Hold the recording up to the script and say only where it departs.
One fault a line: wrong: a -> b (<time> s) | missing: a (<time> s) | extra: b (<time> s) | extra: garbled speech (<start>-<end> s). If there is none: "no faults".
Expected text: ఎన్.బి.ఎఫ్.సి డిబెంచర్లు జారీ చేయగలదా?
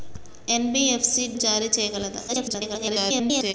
missing: డిబెంచర్లు (1.2 s)
extra: garbled speech (2.3-3.5 s)